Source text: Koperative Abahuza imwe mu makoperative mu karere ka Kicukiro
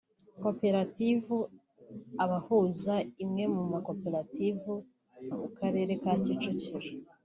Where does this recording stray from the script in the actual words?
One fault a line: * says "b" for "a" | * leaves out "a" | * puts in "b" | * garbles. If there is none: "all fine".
all fine